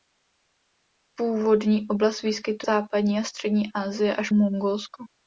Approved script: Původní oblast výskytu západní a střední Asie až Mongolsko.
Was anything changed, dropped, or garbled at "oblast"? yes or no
no